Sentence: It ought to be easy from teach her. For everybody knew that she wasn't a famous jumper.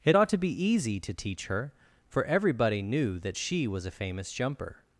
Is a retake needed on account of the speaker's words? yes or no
yes